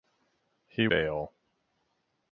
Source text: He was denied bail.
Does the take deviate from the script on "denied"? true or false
true